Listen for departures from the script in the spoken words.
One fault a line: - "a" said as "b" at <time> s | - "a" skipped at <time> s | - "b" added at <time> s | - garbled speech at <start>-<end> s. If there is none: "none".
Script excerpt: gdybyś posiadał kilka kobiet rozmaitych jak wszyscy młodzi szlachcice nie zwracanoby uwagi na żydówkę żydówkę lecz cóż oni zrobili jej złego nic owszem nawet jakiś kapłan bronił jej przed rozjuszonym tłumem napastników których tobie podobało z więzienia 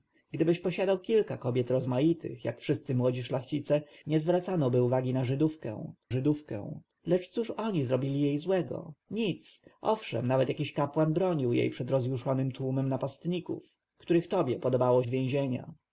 none